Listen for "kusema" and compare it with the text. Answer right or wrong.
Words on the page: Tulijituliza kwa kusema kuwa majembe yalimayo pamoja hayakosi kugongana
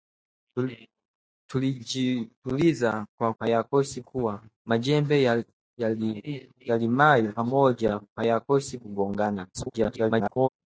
wrong